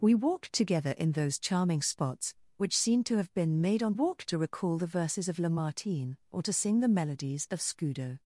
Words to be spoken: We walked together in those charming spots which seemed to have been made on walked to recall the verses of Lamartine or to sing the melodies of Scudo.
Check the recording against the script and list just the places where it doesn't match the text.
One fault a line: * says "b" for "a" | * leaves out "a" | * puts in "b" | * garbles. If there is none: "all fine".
all fine